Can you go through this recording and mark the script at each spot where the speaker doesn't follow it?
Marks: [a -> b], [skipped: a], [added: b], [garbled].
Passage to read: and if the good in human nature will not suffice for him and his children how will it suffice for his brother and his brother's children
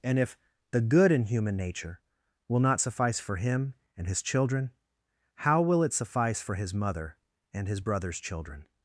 and if the good in human nature will not suffice for him and his children how will it suffice for his [brother -> mother] and his brother's children